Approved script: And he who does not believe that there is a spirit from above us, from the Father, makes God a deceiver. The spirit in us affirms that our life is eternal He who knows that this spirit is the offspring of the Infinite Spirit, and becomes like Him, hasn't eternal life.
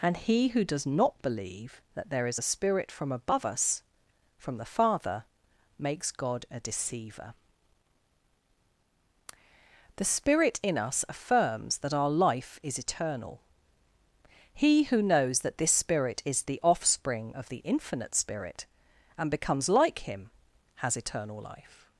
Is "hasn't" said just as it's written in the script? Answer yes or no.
no